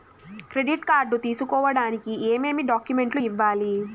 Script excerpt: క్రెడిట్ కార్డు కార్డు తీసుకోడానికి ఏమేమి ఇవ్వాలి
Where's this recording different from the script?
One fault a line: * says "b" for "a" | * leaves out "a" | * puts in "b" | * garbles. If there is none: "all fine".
* leaves out "కార్డు"
* puts in "డాక్యుమెంట్లు"